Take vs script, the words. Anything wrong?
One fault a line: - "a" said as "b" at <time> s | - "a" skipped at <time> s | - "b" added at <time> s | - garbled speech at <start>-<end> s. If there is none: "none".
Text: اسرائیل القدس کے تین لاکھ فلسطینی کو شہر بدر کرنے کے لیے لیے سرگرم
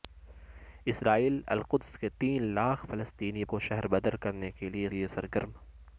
none